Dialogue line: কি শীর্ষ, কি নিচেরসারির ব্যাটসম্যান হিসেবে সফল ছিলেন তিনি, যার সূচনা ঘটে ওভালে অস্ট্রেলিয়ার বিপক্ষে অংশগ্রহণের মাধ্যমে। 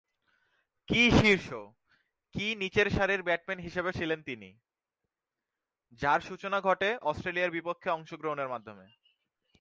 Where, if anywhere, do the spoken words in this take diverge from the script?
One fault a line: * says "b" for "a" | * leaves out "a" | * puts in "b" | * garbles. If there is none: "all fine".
* leaves out "সফল"
* leaves out "ওভালে"